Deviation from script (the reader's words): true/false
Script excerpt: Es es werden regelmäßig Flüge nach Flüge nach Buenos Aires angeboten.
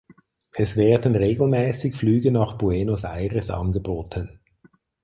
true